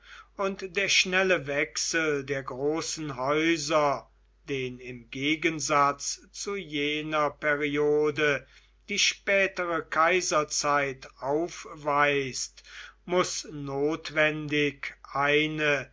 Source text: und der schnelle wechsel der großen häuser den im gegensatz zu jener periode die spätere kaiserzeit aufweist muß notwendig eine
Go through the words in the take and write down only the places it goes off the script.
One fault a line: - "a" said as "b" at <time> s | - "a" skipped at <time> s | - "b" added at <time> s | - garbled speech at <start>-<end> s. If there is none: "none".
none